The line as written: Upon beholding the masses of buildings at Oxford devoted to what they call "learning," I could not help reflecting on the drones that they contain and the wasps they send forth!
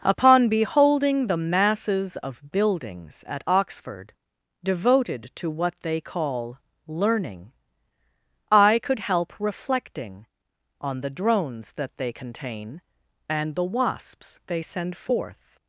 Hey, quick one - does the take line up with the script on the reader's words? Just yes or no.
no